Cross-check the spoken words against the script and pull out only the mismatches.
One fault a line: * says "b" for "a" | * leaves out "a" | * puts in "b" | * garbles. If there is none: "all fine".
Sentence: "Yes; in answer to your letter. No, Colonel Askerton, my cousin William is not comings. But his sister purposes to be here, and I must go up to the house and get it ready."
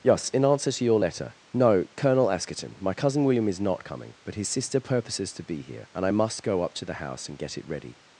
* says "coming" for "comings"